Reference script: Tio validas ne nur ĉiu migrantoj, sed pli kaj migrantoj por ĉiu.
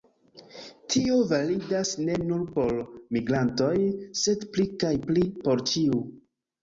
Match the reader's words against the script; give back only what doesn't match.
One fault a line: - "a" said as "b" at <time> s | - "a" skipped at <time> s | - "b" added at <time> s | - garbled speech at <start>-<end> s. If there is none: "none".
- "ĉiu" said as "por" at 2.5 s
- "migrantoj" said as "pli" at 5.1 s